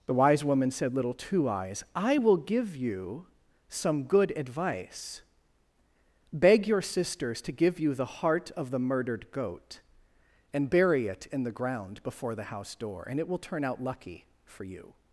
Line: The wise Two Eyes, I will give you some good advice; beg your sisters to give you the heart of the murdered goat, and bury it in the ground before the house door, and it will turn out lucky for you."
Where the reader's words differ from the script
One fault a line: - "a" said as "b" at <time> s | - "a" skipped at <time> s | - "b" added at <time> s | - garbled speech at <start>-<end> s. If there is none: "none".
- "woman said Little" added at 0.4 s